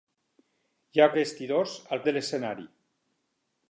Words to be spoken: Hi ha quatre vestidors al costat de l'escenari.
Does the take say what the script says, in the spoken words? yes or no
no